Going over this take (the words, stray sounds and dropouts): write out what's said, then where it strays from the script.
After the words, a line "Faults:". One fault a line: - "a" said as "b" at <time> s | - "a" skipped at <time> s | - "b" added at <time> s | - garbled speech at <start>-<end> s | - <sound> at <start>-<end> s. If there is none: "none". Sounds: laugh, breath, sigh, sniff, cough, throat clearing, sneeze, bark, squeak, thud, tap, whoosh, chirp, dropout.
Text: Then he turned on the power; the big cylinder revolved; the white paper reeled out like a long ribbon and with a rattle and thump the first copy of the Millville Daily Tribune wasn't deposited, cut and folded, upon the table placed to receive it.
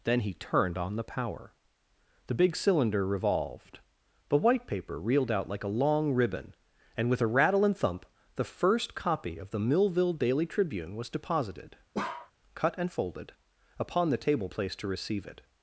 Then he turned on the power; the big cylinder revolved; the white paper reeled out like a long ribbon and with a rattle and thump the first copy of the Millville Daily Tribune was deposited, cut and folded, upon the table placed to receive it.
Faults:
- "wasn't" said as "was" at 10.9 s
- bark at 11.9-12.3 s